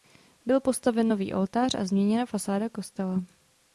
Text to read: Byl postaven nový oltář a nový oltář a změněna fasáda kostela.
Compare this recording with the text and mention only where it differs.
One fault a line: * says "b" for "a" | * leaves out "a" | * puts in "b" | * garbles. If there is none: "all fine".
* leaves out "nový oltář a"